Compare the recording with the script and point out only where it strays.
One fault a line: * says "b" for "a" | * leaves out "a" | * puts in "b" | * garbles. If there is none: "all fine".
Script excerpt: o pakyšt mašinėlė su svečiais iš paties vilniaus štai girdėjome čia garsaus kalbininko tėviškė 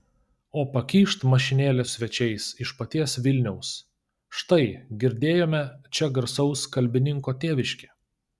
* leaves out "su"